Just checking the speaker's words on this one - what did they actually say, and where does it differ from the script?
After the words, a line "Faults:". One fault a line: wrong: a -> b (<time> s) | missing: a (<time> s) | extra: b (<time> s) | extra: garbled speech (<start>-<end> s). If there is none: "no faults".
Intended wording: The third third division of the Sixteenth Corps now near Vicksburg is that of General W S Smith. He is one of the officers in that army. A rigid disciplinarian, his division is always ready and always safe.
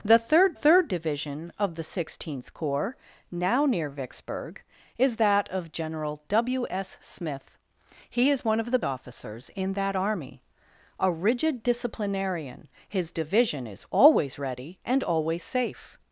The third third division of the Sixteenth Corps now near Vicksburg is that of General W S Smith. He is one of the officers in that army. A rigid disciplinarian, his division is always ready and always safe.
Faults:
no faults